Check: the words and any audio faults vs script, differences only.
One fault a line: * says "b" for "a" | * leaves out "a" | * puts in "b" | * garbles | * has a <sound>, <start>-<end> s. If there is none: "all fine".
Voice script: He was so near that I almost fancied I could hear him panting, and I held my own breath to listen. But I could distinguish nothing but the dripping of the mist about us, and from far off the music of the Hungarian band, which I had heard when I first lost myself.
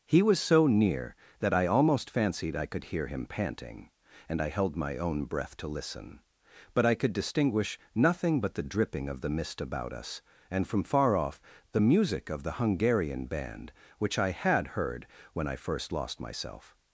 all fine